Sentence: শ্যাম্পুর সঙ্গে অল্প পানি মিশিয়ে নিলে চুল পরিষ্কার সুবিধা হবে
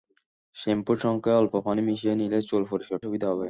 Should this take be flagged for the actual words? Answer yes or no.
no